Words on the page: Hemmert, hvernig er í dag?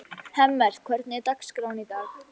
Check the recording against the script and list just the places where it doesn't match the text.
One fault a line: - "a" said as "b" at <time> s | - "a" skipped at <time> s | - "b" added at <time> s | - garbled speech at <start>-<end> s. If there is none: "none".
- "dagskráin" added at 1.3 s